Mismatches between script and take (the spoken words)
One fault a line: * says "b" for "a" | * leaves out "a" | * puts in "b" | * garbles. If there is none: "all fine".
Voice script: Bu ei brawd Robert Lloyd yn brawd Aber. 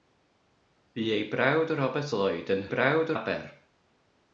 all fine